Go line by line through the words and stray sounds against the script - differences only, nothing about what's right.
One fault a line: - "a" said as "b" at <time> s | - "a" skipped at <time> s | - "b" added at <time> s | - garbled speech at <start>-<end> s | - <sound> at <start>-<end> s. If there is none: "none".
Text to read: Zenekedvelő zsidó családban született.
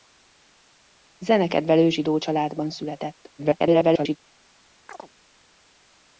- garbled speech at 3.4-4.2 s
- chirp at 4.9-5.1 s